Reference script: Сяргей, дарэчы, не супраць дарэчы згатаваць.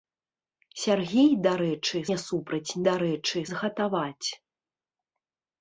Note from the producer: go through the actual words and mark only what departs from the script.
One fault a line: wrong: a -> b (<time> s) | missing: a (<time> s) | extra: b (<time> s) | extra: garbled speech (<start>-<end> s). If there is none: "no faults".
no faults